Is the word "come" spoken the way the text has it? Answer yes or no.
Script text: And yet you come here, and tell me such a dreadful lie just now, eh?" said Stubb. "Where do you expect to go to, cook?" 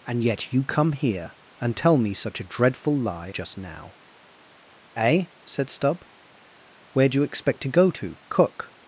yes